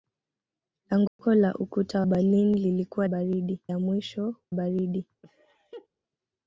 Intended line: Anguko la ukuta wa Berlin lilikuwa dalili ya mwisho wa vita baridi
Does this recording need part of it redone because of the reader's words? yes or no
yes